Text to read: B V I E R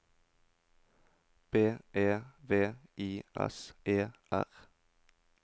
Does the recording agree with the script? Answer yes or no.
no